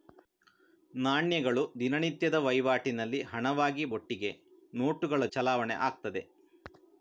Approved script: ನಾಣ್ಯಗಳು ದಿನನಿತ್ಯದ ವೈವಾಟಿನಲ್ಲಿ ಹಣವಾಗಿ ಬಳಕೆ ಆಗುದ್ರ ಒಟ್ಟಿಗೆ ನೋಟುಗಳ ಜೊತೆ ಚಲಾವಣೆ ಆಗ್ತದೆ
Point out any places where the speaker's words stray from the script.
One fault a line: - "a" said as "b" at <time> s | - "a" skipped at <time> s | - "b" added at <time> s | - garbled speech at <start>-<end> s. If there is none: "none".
- "ಬಳಕೆ ಆಗುದ್ರ" skipped at 3.9 s
- "ಜೊತೆ" skipped at 5.3 s